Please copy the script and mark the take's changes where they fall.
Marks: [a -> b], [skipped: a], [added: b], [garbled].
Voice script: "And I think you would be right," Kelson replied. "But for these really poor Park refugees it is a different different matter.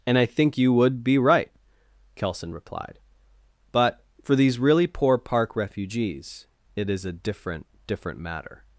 "And I think you would be right," Kelson replied. "But for these really poor Park refugees it is a different different matter.